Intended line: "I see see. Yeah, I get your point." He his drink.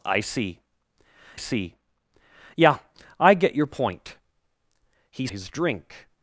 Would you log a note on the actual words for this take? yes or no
no